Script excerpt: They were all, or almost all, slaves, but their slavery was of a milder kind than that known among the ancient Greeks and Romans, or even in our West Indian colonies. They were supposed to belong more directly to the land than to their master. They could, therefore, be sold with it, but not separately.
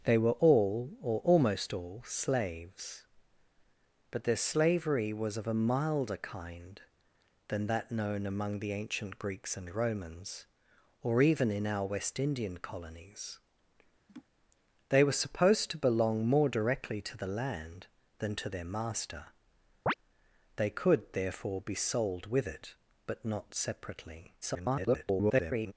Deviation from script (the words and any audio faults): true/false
true